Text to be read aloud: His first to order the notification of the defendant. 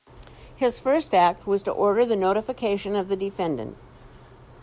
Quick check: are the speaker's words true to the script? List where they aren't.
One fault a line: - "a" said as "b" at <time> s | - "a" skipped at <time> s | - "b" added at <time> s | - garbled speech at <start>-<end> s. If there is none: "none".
- "act was" added at 1.1 s